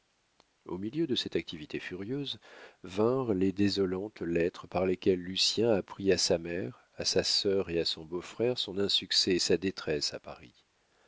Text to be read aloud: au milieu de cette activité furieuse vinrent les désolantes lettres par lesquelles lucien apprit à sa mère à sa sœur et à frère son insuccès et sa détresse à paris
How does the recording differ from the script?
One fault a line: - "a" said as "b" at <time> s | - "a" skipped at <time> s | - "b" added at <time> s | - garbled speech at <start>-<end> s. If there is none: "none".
- "son beau" added at 7.8 s